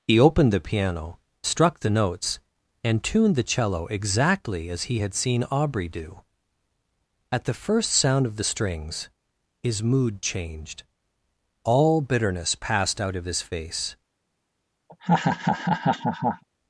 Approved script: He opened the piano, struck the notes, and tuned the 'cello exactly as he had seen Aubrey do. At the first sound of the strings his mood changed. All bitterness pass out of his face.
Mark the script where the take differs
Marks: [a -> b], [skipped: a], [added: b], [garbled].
He opened the piano, struck the notes, and tuned the 'cello exactly as he had seen Aubrey do. At the first sound of the strings his mood changed. All bitterness [pass -> passed] out of his face.